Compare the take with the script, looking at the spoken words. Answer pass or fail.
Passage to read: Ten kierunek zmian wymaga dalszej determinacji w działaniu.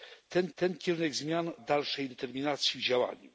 fail